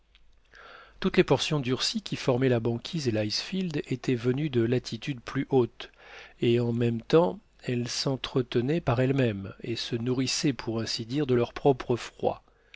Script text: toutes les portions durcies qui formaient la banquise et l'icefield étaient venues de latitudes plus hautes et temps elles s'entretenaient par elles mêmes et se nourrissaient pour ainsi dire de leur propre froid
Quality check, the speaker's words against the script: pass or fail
fail